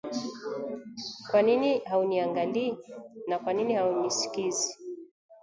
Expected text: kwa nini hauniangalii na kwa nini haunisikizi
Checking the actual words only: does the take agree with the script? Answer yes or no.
yes